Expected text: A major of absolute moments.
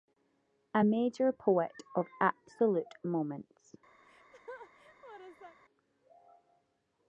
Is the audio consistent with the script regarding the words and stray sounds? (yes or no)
no